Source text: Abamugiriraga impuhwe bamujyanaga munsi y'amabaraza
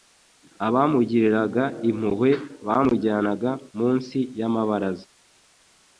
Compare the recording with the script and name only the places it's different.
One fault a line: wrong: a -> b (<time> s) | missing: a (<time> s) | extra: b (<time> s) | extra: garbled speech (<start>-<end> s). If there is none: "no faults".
no faults